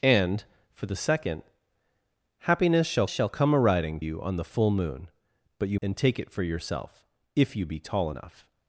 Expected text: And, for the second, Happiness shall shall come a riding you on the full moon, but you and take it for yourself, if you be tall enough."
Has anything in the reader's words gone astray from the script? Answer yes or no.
no